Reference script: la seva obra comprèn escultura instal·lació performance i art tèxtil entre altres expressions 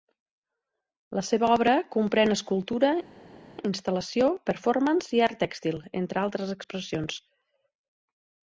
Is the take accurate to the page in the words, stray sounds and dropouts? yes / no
yes